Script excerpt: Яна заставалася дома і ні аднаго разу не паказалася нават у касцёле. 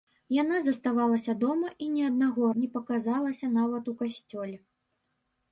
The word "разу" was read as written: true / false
false